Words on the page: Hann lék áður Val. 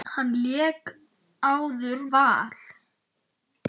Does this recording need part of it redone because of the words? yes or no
no